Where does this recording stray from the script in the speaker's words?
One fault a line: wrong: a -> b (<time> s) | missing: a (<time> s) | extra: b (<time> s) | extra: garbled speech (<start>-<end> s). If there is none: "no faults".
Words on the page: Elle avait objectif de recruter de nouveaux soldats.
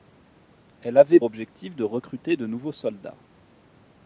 no faults